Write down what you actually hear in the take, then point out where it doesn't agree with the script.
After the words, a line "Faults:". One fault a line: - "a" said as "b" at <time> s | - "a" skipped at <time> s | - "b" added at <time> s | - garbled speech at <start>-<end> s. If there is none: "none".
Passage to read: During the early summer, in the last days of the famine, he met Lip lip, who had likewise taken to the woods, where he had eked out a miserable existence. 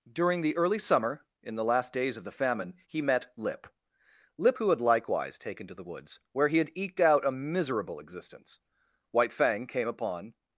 During the early summer, in the last days of the famine, he met Lip lip, who had likewise taken to the woods, where he had eked out a miserable existence. White Fang came upon
Faults:
- "White Fang came upon" added at 9.1 s